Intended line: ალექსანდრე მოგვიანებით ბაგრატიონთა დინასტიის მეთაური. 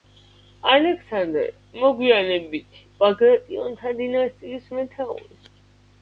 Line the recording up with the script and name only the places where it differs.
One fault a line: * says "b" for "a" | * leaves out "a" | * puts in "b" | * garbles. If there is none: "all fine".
all fine